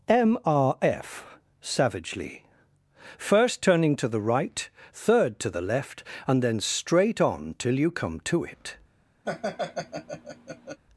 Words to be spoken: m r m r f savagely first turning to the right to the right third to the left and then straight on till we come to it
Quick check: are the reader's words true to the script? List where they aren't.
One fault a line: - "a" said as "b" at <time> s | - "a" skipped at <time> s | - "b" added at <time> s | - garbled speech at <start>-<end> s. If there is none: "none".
- "m r" skipped at 0.8 s
- "to the right" skipped at 4.7 s
- "we" said as "you" at 7.8 s